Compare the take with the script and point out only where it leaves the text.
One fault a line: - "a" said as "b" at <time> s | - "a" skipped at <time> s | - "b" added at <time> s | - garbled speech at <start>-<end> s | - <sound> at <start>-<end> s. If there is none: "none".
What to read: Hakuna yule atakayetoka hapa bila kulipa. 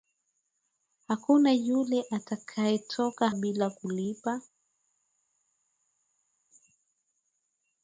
- "hapa" skipped at 3.3 s